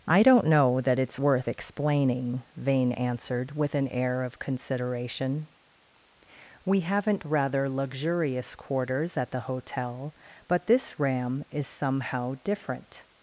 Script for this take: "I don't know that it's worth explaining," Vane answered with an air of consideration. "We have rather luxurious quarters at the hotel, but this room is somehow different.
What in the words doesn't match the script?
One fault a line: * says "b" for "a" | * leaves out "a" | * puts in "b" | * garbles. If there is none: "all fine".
* says "haven't" for "have"
* says "ram" for "room"